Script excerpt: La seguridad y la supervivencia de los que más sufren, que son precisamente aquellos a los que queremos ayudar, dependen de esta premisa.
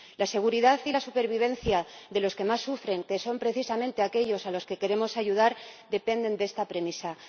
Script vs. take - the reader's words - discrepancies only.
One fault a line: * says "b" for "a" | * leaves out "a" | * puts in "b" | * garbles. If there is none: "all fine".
all fine